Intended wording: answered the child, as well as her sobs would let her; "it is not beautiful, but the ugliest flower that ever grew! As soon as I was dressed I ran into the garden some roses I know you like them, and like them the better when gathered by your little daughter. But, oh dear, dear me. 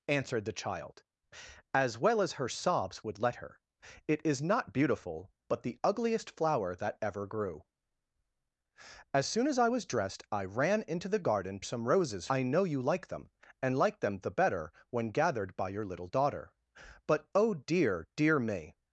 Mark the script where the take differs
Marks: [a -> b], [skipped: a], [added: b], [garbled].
answered the child, as well as her sobs would let her; "it is not beautiful, but the ugliest flower that ever grew! As soon as I was dressed I ran into the garden some roses I know you like them, and like them the better when gathered by your little daughter. But, oh dear, dear me.